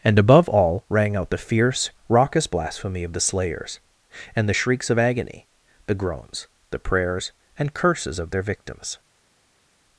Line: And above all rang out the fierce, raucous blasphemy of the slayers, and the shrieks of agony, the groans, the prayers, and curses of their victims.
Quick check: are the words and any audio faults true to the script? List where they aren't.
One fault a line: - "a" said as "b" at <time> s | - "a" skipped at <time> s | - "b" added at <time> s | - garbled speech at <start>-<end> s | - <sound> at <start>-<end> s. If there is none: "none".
none